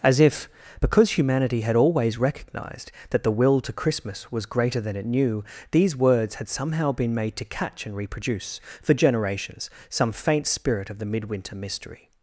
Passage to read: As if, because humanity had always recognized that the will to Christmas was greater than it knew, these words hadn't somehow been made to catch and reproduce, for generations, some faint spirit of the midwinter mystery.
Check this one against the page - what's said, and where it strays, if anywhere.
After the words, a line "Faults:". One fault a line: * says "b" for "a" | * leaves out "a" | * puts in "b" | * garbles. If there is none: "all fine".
As if, because humanity had always recognized that the will to Christmas was greater than it knew, these words had somehow been made to catch and reproduce, for generations, some faint spirit of the midwinter mystery.
Faults:
* says "had" for "hadn't"